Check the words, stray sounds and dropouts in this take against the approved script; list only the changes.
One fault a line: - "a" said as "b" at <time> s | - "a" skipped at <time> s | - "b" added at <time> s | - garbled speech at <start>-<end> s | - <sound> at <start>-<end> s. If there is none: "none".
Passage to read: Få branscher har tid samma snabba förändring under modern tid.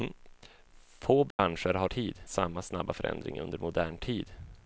- dropout at 1.3-1.4 s